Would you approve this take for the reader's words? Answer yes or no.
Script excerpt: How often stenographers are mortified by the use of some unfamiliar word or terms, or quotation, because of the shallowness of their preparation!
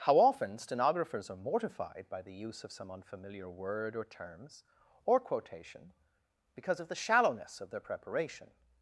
yes